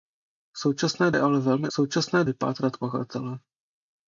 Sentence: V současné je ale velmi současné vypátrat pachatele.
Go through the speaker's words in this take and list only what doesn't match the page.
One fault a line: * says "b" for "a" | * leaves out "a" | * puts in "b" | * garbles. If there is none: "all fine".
all fine